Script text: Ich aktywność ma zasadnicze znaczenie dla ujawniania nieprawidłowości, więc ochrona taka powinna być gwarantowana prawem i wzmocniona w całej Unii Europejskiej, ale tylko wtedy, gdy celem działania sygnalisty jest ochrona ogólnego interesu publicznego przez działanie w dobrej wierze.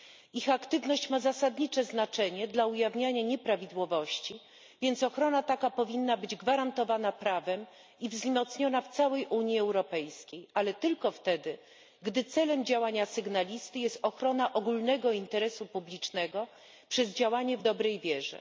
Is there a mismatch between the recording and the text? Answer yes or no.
no